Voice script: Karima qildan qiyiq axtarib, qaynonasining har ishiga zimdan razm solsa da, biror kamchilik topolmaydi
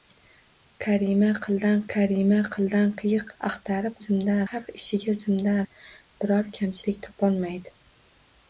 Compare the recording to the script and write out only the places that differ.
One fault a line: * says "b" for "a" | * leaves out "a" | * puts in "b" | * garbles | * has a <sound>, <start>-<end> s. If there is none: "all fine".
* puts in "karima qildan"
* says "zimdan" for "qaynonasining"
* leaves out "razm solsa"